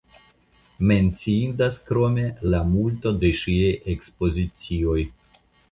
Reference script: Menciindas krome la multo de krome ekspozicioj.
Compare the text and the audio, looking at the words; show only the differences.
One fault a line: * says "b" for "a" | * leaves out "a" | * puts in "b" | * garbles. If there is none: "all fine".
* says "ŝiaj" for "krome"